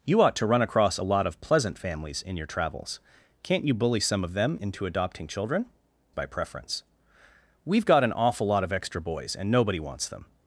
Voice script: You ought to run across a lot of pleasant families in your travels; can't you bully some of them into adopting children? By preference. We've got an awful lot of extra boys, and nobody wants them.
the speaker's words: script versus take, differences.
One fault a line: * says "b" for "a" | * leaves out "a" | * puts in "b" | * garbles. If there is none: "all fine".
all fine